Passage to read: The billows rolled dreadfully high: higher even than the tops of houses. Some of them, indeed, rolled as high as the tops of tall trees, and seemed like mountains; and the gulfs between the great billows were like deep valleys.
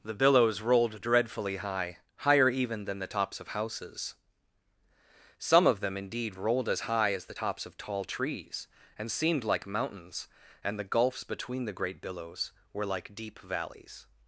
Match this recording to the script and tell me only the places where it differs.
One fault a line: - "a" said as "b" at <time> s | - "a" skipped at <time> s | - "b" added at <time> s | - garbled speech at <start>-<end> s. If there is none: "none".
none